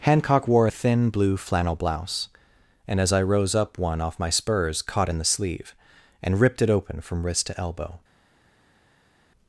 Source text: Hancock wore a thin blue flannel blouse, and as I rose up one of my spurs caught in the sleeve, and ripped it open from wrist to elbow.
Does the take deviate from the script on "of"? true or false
true